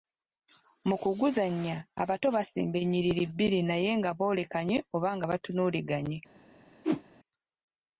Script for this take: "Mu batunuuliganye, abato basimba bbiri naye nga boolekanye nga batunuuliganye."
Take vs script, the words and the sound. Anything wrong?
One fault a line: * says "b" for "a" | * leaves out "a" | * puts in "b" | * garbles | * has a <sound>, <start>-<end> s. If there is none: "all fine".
* says "kuguzannya" for "batunuuliganye"
* puts in "ennyiriri"
* puts in "oba"
* has a whoosh, 6.8-7.0 s